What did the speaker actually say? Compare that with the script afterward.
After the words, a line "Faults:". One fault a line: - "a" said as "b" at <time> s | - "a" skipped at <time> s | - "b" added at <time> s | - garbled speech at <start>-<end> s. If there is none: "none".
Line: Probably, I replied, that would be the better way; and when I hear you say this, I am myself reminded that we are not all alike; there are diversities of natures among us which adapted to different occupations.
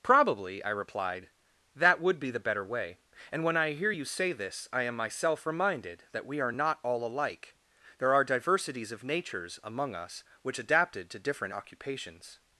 Probably, I replied, that would be the better way; and when I hear you say this, I am myself reminded that we are not all alike; there are diversities of natures among us which adapted to different occupations.
Faults:
none